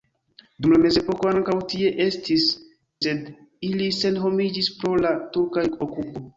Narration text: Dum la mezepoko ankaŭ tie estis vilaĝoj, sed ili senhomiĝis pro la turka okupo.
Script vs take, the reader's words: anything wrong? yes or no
yes